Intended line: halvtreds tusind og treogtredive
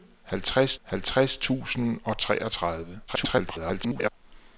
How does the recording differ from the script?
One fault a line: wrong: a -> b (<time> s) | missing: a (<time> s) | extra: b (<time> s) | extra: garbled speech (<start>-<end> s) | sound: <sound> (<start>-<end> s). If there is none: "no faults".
extra: halvtreds (0.8 s)
extra: garbled speech (3.1-4.1 s)